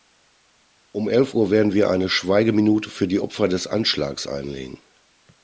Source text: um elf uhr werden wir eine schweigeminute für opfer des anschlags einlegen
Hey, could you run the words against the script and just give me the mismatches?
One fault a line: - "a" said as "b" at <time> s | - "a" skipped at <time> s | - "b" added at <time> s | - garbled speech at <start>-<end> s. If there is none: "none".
- "die" added at 3.1 s